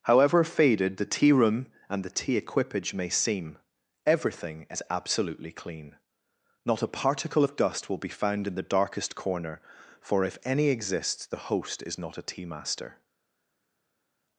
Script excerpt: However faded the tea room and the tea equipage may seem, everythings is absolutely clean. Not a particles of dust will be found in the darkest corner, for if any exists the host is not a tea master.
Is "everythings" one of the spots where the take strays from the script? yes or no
yes